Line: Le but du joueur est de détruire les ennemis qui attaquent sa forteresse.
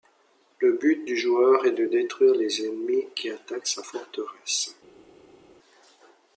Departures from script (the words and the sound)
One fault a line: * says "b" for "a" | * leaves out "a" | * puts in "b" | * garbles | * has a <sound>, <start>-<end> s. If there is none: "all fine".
all fine